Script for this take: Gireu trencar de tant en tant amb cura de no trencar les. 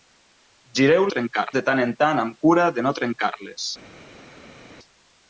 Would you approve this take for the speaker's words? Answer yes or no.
yes